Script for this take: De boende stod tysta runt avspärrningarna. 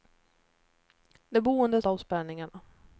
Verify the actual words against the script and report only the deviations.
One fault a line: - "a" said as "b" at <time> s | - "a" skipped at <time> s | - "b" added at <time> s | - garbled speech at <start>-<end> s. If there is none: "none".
- "stod tysta runt" skipped at 1.8 s